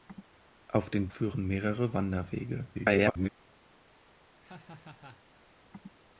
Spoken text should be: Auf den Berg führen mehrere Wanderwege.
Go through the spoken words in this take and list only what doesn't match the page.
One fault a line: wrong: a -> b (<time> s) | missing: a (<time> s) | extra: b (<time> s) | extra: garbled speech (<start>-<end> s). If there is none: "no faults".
missing: Berg (1.1 s)
extra: garbled speech (2.7-3.3 s)